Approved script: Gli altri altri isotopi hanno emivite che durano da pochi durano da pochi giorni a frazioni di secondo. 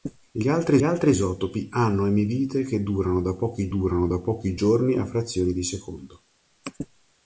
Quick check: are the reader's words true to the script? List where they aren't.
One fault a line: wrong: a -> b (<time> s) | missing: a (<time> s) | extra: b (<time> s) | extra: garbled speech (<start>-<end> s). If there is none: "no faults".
no faults